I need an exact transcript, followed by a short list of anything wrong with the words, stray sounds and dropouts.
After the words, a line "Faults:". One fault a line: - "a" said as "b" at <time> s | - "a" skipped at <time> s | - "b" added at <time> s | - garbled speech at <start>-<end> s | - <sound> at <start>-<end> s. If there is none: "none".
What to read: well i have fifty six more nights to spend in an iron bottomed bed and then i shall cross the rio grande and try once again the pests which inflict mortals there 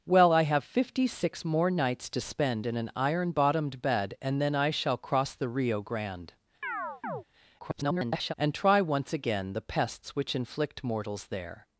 well i have fifty six more nights to spend in an iron bottomed bed and then i shall cross the rio grande [garbled] and try once again the pests which inflict mortals there
Faults:
- chirp at 6.6-7.2 s
- garbled speech at 7.6-8.3 s